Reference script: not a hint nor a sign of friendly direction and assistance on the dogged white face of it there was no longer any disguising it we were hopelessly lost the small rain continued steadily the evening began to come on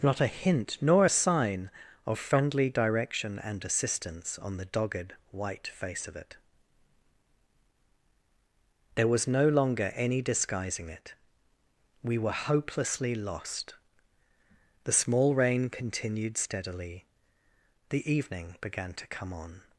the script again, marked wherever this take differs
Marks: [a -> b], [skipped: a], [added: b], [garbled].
not a hint nor a sign of friendly direction and assistance on the dogged white face of it there was no longer any disguising it we were hopelessly lost the small rain continued steadily the evening began to come on